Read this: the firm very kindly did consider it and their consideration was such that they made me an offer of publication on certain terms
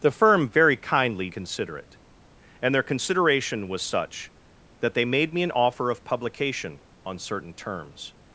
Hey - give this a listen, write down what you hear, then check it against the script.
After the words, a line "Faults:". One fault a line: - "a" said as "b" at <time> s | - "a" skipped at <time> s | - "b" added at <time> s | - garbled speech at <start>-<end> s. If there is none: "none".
the firm very kindly consider it and their consideration was such that they made me an offer of publication on certain terms
Faults:
- "did" skipped at 1.3 s